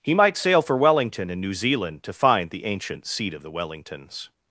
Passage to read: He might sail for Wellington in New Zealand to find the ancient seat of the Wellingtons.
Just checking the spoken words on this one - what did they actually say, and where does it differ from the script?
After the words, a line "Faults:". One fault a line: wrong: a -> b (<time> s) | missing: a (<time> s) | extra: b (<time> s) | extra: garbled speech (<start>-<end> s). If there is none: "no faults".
He might sail for Wellington in New Zealand to find the ancient seat of the Wellingtons.
Faults:
no faults